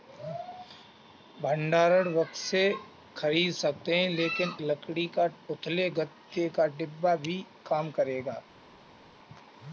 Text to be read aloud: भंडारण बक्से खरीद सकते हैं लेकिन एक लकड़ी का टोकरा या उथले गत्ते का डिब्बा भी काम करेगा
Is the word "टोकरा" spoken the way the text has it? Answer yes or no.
no